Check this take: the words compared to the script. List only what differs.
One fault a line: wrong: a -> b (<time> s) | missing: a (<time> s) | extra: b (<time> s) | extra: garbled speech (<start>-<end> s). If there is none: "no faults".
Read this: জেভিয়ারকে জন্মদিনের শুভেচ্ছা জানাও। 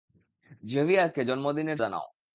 missing: শুভেচ্ছা (1.8 s)